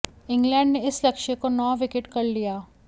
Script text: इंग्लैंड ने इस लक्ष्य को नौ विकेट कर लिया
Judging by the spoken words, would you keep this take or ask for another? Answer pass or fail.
pass